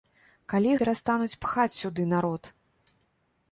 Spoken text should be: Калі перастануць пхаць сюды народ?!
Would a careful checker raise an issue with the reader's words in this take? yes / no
no